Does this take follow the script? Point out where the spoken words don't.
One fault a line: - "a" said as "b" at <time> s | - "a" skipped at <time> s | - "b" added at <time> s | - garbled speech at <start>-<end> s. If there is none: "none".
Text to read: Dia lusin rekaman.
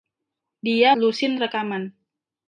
none